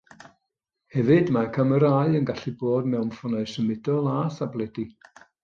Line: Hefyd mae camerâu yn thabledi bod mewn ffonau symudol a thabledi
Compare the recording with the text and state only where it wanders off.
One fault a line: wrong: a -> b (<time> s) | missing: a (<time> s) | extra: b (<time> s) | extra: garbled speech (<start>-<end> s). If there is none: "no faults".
wrong: thabledi -> gallu (2.3 s)